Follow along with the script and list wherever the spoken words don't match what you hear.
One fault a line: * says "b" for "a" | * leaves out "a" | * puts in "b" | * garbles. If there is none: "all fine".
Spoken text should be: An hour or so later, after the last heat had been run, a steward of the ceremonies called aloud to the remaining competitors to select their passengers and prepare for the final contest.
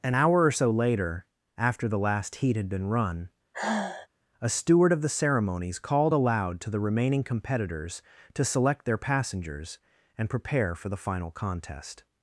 all fine